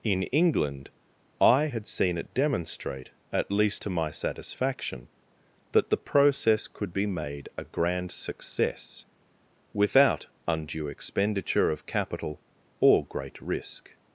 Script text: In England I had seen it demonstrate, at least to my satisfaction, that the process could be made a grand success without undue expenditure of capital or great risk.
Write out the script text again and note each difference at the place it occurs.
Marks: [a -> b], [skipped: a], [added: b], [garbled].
In England I had seen it demonstrate, at least to my satisfaction, that the process could be made a grand success without undue expenditure of capital or great risk.